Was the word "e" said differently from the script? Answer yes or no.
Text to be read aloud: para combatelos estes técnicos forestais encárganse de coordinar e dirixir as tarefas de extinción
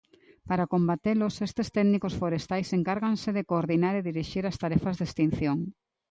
no